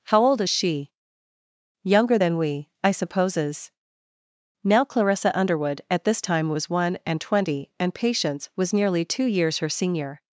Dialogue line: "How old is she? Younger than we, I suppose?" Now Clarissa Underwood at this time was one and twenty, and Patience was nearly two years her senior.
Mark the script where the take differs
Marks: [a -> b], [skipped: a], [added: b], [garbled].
"How old is she? Younger than we, I [suppose?" -> supposes] Now Clarissa Underwood at this time was one and twenty, and Patience was nearly two years her senior.